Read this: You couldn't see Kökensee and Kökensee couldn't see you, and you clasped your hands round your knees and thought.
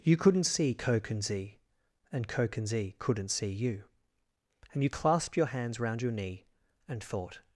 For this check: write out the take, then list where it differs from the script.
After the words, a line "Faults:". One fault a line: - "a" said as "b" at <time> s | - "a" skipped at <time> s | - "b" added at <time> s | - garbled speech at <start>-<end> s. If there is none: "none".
You couldn't see Kökensee and Kökensee couldn't see you, and you clasped your hands round your knee and thought.
Faults:
- "knees" said as "knee" at 6.1 s